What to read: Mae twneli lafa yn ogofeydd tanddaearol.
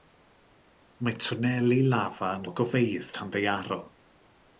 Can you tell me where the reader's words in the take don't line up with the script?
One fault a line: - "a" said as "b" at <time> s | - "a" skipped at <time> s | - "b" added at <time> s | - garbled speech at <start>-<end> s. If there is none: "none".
none